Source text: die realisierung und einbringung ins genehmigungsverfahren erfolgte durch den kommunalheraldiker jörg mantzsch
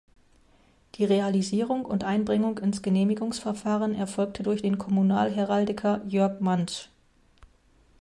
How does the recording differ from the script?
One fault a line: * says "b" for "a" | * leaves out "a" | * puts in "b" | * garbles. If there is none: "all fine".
all fine